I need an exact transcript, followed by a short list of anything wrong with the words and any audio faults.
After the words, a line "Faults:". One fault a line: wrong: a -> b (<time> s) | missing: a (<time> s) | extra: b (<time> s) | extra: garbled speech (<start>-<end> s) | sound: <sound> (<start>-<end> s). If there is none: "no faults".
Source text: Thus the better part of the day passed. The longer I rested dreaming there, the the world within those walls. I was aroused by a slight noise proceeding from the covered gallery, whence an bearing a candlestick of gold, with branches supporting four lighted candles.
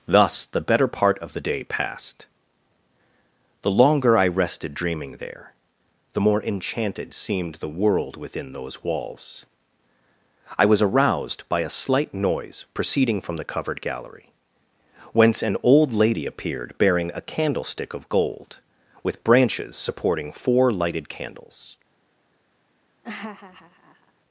Thus the better part of the day passed. The longer I rested dreaming there, the more enchanted seemed the world within those walls. I was aroused by a slight noise proceeding from the covered gallery, whence an old lady appeared bearing a candlestick of gold, with branches supporting four lighted candles.
Faults:
extra: more enchanted seemed (6.2 s)
extra: old lady appeared (15.6 s)
sound: laugh (23.0-24.1 s)